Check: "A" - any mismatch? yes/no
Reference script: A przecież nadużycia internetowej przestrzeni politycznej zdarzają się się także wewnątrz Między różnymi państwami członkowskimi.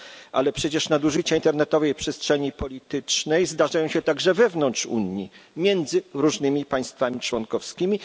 yes